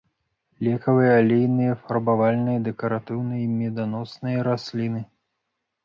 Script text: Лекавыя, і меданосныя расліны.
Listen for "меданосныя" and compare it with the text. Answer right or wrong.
right